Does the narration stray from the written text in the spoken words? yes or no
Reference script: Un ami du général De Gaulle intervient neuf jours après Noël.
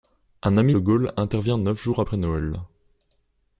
yes